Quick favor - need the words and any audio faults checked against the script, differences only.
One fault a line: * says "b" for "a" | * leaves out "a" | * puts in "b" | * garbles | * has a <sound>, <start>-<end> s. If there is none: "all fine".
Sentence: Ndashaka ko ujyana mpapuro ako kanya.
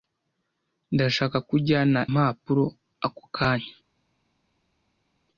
all fine